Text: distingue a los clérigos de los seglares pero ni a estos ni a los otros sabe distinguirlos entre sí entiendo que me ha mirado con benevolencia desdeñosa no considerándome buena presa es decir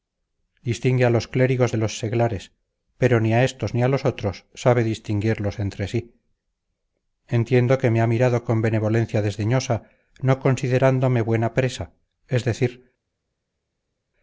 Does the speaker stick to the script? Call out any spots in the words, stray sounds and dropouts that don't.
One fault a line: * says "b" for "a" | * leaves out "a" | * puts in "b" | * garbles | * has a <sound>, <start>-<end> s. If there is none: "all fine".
all fine